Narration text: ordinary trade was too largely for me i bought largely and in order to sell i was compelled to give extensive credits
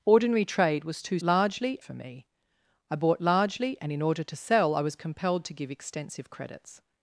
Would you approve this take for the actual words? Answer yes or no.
yes